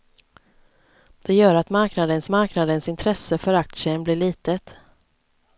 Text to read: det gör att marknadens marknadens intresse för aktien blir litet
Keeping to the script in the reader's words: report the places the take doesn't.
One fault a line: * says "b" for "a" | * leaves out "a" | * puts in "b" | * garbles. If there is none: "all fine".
all fine